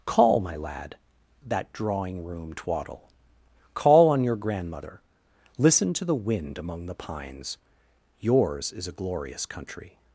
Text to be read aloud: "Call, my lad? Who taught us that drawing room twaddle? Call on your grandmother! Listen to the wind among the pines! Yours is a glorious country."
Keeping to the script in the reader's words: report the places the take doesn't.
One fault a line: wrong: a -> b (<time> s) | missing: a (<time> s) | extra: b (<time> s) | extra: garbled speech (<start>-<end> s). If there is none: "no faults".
missing: Who taught us (1.0 s)